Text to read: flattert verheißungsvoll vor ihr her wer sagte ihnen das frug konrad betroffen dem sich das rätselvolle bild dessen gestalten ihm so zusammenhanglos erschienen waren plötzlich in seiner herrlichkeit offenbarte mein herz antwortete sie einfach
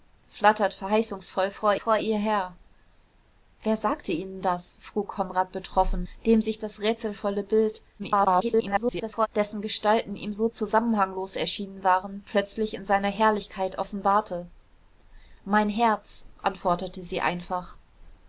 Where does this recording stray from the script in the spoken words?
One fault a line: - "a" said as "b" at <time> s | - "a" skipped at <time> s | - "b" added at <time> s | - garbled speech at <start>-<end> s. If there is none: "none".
- "vor" added at 1.8 s
- garbled speech at 8.0-9.3 s